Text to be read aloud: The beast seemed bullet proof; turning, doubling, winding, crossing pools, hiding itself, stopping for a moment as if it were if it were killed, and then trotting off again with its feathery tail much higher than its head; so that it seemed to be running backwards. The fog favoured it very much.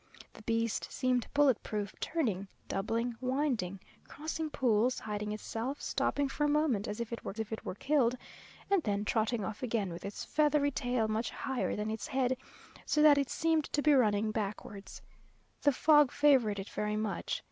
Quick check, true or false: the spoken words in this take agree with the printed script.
true